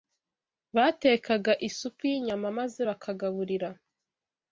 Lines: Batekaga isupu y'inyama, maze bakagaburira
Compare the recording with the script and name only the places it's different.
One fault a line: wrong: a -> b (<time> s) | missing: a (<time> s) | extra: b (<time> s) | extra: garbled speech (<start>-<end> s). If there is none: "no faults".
no faults